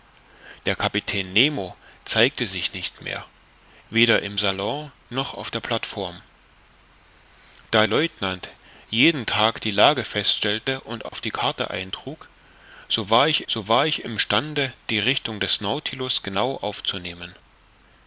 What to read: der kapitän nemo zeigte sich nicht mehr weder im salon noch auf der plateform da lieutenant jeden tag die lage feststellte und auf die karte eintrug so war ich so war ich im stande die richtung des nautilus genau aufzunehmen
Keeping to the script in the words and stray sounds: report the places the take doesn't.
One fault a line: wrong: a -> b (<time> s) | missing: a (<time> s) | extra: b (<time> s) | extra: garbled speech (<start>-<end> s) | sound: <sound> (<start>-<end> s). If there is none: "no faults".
sound: dropout (11.1-11.1 s)